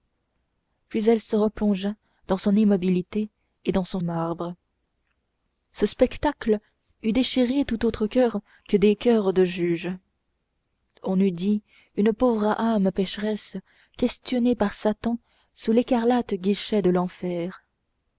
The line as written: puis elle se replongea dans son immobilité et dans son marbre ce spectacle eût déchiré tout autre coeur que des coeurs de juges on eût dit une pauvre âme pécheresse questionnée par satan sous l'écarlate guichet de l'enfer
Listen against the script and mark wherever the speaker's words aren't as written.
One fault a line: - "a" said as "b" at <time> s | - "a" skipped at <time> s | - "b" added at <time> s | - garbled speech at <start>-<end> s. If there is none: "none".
none